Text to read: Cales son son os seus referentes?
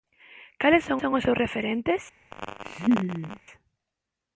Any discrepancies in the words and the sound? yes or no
yes